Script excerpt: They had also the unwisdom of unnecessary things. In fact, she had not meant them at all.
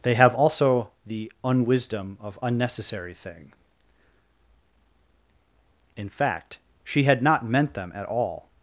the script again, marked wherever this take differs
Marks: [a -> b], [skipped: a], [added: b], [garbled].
They [had -> have] also the unwisdom of unnecessary [things. -> thing] In fact, she had not meant them at all.